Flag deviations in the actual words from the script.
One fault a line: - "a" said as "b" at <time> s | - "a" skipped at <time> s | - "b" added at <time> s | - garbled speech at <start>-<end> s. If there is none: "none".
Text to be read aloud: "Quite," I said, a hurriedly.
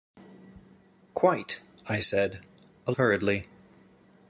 none